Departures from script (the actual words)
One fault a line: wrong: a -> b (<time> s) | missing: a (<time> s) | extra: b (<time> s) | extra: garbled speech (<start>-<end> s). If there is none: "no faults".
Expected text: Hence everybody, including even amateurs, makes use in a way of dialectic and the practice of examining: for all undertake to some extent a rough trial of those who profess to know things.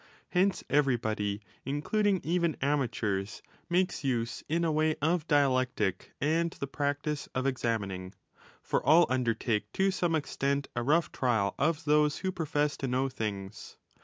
no faults